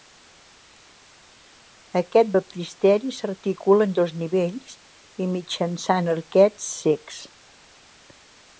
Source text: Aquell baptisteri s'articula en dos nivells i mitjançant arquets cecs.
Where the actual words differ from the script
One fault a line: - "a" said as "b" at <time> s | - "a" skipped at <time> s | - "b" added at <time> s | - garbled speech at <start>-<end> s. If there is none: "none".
- "Aquell" said as "Aquest" at 2.0 s